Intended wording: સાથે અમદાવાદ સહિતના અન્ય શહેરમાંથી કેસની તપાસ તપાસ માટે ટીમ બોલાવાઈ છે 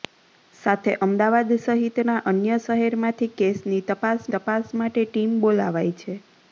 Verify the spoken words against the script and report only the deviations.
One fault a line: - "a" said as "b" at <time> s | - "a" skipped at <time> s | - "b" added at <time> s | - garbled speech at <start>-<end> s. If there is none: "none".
none